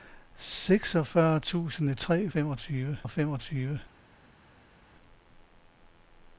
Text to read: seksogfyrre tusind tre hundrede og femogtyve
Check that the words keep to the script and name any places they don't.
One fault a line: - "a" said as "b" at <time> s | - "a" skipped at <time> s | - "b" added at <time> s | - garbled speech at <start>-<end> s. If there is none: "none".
- "hundrede" said as "femogtyve" at 2.3 s